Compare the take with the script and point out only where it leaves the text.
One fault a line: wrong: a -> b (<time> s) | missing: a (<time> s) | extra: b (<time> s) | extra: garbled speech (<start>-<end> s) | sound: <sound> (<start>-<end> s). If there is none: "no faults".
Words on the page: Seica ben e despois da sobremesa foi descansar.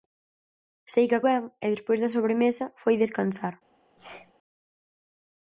sound: sneeze (4.0-4.3 s)